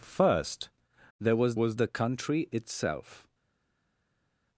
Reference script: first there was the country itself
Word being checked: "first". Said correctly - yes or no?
yes